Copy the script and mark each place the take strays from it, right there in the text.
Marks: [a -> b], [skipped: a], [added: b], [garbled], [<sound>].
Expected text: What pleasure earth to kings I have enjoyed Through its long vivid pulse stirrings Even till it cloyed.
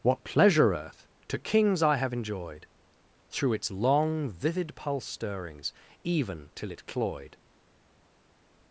What pleasure earth to kings I have enjoyed Through its long vivid pulse stirrings Even till it cloyed.